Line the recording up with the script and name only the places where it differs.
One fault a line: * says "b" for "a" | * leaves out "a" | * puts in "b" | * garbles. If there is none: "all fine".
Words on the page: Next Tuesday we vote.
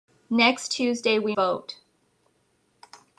all fine